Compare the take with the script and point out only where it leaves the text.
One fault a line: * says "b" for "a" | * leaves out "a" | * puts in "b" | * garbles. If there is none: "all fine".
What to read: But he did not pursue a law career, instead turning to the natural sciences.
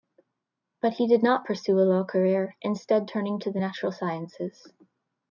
all fine